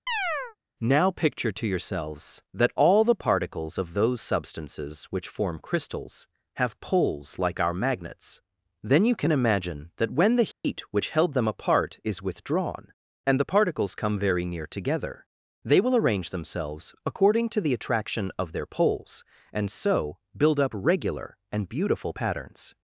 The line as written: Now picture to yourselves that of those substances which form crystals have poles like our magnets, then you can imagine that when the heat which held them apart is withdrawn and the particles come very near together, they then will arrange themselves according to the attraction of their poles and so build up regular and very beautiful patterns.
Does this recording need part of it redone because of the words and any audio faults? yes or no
yes